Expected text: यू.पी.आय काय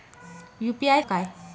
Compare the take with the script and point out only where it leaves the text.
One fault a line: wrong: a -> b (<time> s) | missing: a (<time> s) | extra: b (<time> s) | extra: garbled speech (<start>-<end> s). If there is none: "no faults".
no faults